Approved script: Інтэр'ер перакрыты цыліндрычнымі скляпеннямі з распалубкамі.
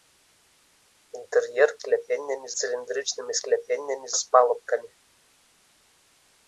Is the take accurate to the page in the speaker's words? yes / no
no